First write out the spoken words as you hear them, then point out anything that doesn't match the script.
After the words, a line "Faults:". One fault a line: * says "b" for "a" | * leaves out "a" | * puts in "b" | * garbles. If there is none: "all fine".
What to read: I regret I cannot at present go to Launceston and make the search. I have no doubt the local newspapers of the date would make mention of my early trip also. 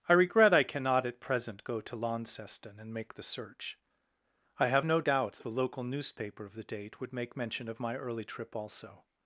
I regret I cannot at present go to Launceston and make the search. I have no doubt the local newspaper of the date would make mention of my early trip also.
Faults:
* says "newspaper" for "newspapers"